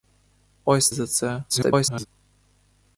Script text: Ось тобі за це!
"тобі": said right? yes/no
no